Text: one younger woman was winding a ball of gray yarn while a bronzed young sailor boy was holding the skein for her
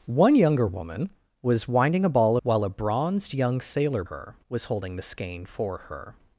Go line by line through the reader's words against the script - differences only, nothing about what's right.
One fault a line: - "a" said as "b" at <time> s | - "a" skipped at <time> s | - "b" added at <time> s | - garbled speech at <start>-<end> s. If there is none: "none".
- "of gray yarn" skipped at 2.4 s
- "boy" said as "her" at 4.1 s